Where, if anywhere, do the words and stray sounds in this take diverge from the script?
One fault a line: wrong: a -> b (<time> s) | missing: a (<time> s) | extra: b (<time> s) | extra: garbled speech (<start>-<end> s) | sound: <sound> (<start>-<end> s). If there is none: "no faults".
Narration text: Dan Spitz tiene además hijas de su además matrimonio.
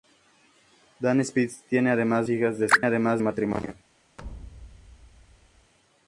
sound: thud (4.2-5.7 s)